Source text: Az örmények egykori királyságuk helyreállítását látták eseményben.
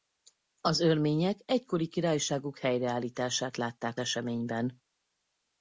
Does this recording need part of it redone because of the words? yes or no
no